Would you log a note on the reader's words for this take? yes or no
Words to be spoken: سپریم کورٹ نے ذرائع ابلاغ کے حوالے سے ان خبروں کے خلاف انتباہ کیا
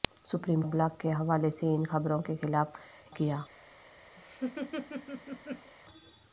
yes